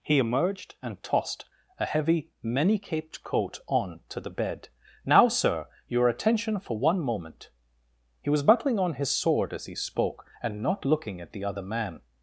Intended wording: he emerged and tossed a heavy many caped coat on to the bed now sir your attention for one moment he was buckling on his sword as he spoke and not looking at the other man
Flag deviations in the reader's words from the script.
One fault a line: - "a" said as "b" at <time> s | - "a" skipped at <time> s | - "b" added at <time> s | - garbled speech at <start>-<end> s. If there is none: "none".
none